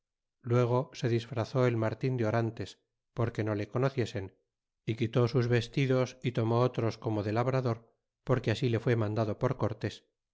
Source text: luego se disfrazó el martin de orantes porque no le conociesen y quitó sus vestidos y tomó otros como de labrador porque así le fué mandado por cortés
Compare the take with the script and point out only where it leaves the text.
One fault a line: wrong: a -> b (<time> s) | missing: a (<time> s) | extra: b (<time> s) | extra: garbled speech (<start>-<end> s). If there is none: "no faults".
no faults